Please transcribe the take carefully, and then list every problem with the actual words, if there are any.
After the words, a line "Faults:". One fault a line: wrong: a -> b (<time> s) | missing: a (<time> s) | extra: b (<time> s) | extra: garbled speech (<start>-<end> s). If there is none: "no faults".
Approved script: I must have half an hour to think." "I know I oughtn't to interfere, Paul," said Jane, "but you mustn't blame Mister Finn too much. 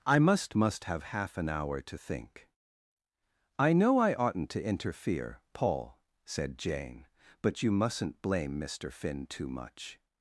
I must must have half an hour to think." "I know I oughtn't to interfere, Paul," said Jane, "but you mustn't blame Mister Finn too much.
Faults:
extra: must (0.6 s)